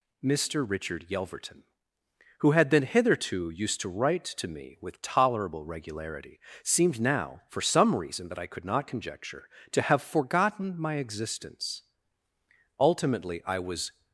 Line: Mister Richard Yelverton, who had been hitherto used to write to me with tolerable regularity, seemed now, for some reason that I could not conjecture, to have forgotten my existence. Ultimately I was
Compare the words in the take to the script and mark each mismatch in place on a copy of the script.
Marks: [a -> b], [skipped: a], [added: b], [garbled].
Mister Richard Yelverton, who had been hitherto used to write to me with tolerable regularity, seemed now, for some reason that I could not conjecture, to have forgotten my existence. Ultimately I was